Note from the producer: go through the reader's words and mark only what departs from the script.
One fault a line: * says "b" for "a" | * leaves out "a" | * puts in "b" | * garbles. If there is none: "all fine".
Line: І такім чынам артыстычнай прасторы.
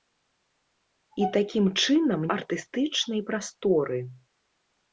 all fine